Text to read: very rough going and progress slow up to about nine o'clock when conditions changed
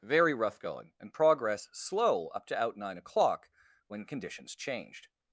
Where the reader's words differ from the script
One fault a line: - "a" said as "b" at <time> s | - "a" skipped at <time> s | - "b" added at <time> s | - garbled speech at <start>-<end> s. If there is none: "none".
- "about" said as "out" at 2.6 s